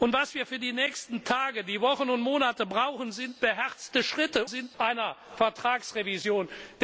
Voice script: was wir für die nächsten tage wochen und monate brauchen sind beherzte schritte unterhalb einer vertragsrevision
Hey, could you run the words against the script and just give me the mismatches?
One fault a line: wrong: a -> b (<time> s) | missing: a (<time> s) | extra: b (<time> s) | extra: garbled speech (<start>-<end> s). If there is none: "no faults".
wrong: unterhalb -> sind (4.5 s)